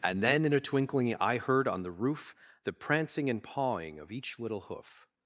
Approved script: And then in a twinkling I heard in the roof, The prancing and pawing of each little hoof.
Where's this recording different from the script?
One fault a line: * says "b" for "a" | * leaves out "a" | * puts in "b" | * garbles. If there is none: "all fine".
* says "on" for "in"